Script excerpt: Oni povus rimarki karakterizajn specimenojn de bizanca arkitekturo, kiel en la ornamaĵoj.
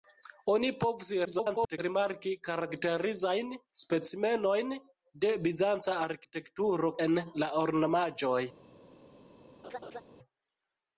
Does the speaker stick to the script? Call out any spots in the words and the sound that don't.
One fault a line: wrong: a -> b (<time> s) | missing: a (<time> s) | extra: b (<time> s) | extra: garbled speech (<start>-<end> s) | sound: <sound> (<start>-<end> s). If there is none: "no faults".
extra: garbled speech (1.2-1.8 s)
missing: kiel (6.9 s)
sound: laugh (9.6-10.0 s)